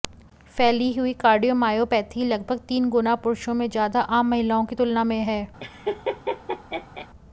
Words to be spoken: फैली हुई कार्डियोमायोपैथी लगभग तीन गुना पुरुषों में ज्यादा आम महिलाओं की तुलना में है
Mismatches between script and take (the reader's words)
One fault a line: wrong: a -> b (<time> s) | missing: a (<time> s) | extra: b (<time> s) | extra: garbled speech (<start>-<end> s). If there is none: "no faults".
no faults